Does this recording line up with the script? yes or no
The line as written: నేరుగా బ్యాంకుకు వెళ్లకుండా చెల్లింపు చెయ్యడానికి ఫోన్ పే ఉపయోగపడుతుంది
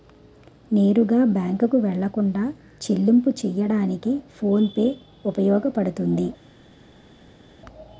yes